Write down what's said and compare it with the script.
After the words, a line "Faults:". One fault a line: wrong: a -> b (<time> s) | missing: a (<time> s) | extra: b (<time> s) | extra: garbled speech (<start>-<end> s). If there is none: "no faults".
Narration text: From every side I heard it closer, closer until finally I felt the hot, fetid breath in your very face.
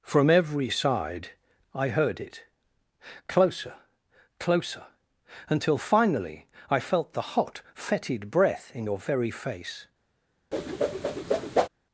From every side I heard it closer, closer until finally I felt the hot, fetid breath in your very face.
Faults:
no faults